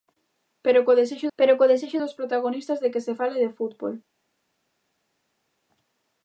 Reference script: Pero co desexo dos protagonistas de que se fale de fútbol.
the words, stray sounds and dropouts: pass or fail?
fail